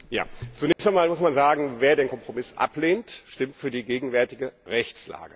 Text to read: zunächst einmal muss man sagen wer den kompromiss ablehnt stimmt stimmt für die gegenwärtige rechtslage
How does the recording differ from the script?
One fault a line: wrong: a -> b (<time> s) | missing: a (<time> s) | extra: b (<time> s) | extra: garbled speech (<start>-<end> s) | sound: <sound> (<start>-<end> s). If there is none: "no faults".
sound: dropout (0.7-0.8 s)
missing: stimmt (3.6 s)